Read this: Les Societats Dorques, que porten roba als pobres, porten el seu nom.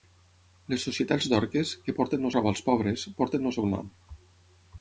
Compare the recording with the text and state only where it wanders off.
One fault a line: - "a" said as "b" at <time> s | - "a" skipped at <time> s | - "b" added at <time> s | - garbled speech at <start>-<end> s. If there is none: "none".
none